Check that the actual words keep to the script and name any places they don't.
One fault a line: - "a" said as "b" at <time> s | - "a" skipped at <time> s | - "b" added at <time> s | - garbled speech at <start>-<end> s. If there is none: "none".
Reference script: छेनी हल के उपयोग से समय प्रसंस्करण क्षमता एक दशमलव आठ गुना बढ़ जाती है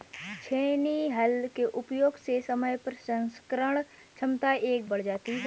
- "दशमलव आठ गुना" skipped at 4.8 s